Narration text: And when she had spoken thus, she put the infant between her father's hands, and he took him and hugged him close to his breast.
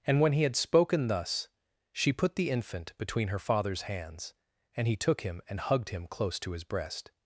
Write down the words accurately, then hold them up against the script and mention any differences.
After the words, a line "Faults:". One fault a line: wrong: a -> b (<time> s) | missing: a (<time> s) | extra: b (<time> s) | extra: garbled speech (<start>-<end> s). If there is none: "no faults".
And when he had spoken thus, she put the infant between her father's hands, and he took him and hugged him close to his breast.
Faults:
wrong: she -> he (0.3 s)